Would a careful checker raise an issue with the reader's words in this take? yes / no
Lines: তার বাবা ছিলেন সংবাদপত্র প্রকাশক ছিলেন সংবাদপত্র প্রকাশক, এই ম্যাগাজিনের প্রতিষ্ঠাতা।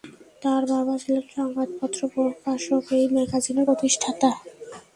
yes